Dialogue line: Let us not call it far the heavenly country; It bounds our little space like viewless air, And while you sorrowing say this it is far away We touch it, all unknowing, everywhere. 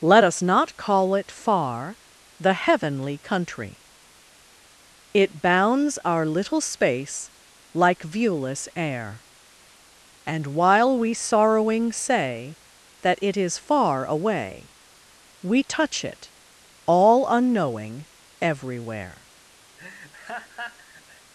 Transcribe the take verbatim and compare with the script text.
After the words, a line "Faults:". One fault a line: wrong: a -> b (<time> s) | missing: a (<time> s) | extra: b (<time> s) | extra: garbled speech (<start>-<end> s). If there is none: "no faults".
Let us not call it far the heavenly country; It bounds our little space like viewless air, And while we sorrowing say that it is far away We touch it, all unknowing, everywhere.
Faults:
wrong: you -> we (11.0 s)
wrong: this -> that (13.0 s)